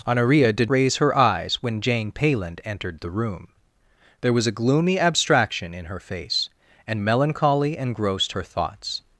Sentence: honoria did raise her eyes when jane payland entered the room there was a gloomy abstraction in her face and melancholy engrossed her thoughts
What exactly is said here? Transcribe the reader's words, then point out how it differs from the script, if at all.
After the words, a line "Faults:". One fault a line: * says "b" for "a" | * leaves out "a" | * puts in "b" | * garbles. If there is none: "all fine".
honoria did raise her eyes when jane payland entered the room there was a gloomy abstraction in her face and melancholy engrossed her thoughts
Faults:
all fine